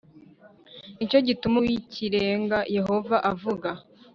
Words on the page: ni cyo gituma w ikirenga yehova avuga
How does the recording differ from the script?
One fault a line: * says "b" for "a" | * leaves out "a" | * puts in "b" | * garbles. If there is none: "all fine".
all fine